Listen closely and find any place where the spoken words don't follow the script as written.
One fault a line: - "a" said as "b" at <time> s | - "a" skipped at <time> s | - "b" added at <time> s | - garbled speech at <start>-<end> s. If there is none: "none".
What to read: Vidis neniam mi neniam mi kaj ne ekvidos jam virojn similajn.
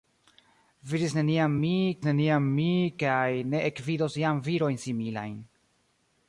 none